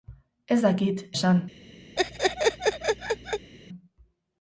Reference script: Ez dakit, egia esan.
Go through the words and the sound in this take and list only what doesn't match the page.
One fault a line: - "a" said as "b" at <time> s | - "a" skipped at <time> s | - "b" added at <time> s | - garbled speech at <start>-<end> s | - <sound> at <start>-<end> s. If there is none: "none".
- "egia" skipped at 1.0 s
- laugh at 2.0-3.5 s